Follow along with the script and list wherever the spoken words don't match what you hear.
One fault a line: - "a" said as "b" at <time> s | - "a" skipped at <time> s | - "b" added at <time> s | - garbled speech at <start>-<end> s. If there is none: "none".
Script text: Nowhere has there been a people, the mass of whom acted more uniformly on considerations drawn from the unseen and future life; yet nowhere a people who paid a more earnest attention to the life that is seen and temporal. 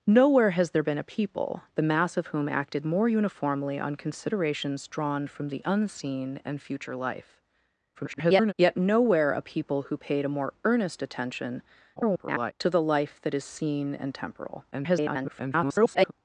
- garbled speech at 7.9-8.5 s
- garbled speech at 12.0-12.5 s
- garbled speech at 14.7-16.1 s